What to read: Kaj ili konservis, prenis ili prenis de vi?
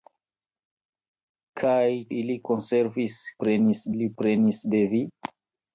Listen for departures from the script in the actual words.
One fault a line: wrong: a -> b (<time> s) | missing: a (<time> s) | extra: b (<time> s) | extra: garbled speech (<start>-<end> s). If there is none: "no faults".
no faults